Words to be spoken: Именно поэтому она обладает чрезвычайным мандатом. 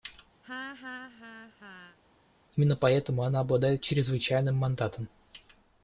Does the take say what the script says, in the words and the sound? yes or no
no